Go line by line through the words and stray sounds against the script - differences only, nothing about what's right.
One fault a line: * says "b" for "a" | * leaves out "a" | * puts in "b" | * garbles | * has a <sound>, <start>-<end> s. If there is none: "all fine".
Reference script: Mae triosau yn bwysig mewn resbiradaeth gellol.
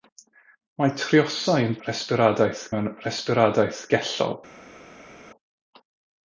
* says "resbiradaeth" for "bwysig"